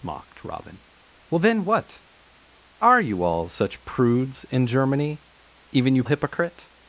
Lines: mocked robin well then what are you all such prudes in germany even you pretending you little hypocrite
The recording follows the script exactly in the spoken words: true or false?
false